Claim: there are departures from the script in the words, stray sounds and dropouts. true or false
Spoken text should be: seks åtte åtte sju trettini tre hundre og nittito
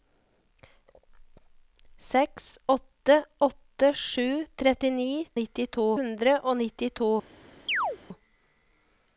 true